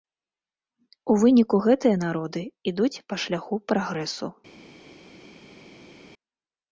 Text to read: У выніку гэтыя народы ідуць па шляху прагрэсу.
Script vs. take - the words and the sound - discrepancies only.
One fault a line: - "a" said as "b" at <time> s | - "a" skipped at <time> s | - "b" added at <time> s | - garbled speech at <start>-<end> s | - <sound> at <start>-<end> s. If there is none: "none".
none